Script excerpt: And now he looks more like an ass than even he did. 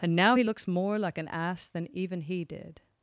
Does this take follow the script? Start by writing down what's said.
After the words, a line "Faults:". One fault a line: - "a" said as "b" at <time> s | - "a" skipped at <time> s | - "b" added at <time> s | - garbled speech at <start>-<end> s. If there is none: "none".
And now he looks more like an ass than even he did.
Faults:
none